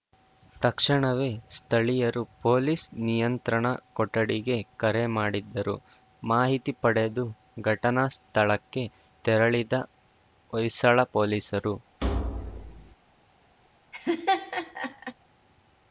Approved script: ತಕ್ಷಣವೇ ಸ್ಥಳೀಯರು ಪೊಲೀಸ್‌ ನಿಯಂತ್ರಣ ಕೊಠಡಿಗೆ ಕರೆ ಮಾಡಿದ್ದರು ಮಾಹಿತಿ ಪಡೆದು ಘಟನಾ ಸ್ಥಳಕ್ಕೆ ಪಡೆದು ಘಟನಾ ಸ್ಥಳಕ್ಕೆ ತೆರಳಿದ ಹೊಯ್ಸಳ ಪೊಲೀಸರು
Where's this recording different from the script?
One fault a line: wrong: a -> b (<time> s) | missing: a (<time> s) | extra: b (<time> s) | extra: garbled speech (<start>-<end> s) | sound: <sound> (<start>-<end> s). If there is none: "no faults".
missing: ಪಡೆದು ಘಟನಾ ಸ್ಥಳಕ್ಕೆ (8.8 s)
sound: thud (12.0-13.0 s)
sound: laugh (13.9-15.1 s)